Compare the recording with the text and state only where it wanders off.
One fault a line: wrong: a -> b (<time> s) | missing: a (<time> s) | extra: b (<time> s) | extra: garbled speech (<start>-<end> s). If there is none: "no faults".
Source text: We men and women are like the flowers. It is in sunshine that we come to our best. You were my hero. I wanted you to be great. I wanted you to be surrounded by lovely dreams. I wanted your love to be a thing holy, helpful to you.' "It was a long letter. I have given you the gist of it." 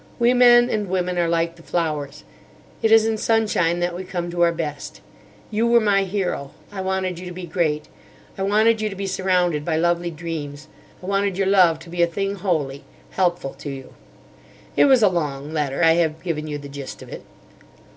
no faults